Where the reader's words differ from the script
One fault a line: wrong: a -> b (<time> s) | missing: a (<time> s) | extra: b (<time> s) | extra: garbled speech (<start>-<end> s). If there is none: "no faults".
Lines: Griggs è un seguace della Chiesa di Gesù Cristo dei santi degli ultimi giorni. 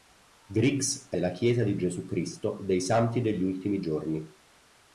missing: un seguace (1.2 s)